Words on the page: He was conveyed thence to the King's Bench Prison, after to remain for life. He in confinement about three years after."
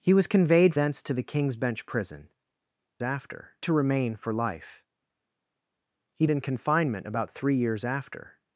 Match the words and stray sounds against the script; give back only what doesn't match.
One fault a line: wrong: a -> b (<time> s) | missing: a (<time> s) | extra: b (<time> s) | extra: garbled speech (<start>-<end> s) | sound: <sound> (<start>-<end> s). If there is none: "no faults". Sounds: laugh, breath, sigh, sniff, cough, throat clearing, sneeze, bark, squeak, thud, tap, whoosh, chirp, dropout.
no faults